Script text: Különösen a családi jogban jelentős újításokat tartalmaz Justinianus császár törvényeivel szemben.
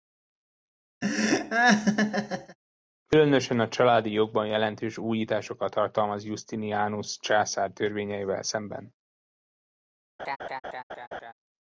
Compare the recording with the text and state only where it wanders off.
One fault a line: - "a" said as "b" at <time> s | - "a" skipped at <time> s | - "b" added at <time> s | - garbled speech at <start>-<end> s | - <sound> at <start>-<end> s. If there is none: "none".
- laugh at 1.0-2.6 s
- laugh at 10.2-11.3 s